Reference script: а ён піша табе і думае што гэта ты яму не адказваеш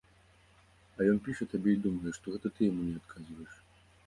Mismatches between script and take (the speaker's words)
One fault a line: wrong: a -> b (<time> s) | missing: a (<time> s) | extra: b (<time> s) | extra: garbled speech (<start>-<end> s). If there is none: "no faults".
no faults